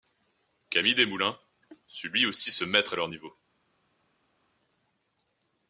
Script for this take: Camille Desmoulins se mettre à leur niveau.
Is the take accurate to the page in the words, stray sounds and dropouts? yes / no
no